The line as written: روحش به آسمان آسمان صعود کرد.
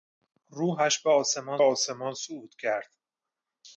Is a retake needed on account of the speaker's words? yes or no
no